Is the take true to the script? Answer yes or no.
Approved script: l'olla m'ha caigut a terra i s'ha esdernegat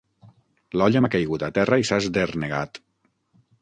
yes